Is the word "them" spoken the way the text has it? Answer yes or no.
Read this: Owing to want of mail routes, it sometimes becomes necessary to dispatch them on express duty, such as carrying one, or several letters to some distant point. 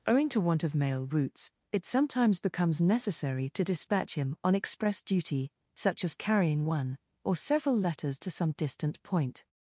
no